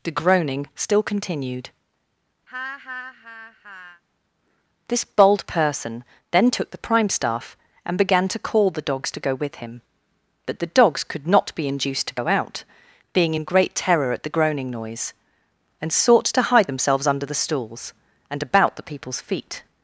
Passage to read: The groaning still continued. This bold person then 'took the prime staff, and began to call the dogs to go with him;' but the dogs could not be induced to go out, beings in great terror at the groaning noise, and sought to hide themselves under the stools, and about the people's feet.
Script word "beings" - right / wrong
wrong